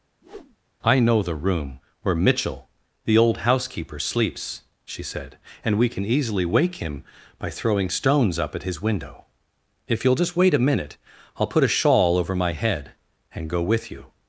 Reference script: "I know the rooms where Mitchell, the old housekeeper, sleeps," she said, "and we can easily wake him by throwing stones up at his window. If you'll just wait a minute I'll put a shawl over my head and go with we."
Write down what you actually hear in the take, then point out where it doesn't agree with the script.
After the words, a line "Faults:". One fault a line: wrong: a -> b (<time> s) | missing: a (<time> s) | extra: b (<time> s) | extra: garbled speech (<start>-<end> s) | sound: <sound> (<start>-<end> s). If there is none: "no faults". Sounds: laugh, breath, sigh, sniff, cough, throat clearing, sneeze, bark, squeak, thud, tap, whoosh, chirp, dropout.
"I know the room where Mitchell, the old housekeeper, sleeps," she said, "and we can easily wake him by throwing stones up at his window. If you'll just wait a minute I'll put a shawl over my head and go with you."
Faults:
sound: whoosh (0.2-0.6 s)
wrong: rooms -> room (1.3 s)
wrong: we -> you (13.9 s)